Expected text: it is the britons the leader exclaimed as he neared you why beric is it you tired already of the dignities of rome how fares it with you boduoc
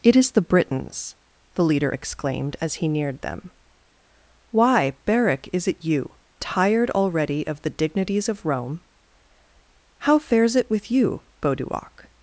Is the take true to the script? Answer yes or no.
no